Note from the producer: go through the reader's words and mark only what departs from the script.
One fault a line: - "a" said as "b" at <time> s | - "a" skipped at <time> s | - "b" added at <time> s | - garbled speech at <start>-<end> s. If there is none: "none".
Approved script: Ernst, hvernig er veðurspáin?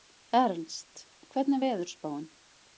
none